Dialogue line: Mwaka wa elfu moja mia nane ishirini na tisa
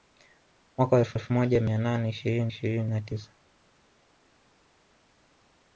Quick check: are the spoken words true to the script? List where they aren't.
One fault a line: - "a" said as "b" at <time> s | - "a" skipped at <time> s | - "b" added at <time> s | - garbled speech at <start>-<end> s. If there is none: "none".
- "elfu" added at 1.1 s
- "ishirini" added at 2.5 s